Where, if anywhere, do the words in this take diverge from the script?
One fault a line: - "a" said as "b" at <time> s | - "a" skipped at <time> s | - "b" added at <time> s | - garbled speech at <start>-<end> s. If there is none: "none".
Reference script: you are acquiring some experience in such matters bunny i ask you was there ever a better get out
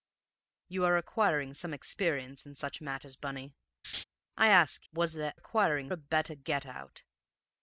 - "you" skipped at 4.9 s
- "ever" said as "acquiring" at 5.3 s